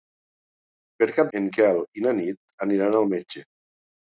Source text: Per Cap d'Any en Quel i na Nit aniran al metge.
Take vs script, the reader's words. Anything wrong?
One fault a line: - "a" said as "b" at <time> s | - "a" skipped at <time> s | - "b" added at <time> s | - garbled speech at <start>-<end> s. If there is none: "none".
- "d'Any" skipped at 1.3 s